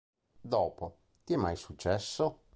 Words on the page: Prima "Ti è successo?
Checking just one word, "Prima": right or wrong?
wrong